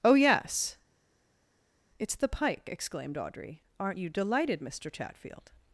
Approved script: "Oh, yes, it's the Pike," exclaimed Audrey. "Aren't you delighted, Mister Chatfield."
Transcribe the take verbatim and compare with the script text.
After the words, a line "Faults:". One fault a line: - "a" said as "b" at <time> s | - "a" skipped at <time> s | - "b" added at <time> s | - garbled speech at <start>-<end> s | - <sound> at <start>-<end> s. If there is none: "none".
"Oh, yes, it's the Pike," exclaimed Audrey. "Aren't you delighted, Mister Chatfield."
Faults:
none